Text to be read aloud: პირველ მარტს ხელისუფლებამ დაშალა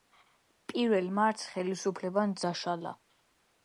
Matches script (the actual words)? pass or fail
pass